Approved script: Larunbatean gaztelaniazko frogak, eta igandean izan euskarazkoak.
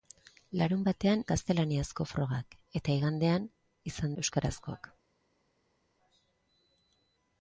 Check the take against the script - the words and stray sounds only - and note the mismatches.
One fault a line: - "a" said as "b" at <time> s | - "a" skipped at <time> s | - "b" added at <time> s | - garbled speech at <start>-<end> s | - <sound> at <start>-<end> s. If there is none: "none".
none